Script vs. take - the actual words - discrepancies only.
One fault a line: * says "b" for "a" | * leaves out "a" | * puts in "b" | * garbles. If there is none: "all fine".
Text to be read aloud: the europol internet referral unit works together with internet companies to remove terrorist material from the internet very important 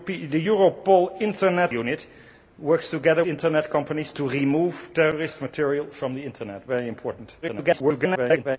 * leaves out "referral"
* leaves out "with"
* garbles